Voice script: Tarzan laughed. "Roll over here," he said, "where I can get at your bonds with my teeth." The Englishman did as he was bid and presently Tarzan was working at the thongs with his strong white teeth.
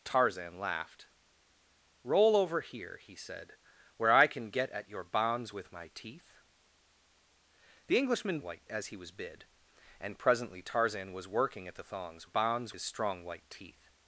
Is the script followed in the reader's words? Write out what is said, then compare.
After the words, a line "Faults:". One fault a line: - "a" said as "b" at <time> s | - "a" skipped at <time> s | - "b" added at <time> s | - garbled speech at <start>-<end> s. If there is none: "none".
Tarzan laughed. "Roll over here," he said, "where I can get at your bonds with my teeth." The Englishman white as he was bid and presently Tarzan was working at the thongs bonds his strong white teeth.
Faults:
- "did" said as "white" at 8.4 s
- "with" said as "bonds" at 12.2 s